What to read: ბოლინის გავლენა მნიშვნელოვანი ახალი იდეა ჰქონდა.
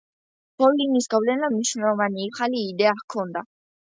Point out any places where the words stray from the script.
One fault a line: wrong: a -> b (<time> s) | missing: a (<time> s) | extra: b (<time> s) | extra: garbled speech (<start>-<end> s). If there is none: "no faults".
no faults